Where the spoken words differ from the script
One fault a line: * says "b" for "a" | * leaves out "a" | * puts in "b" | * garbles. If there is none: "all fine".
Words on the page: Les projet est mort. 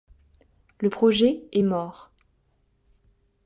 * says "Le" for "Les"